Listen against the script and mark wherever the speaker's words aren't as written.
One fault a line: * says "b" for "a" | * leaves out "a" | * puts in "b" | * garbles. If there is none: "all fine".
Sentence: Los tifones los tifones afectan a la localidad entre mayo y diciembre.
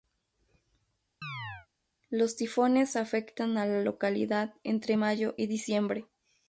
* leaves out "los tifones"